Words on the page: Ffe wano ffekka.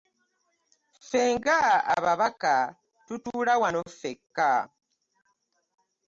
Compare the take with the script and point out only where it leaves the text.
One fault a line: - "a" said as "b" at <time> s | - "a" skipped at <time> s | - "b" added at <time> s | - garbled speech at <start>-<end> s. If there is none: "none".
- "nga ababaka tutuula" added at 1.4 s